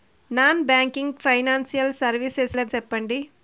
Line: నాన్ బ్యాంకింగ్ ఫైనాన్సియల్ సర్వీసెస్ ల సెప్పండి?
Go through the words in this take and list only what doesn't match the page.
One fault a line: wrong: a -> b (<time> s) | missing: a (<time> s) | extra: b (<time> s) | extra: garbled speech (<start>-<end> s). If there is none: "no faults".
no faults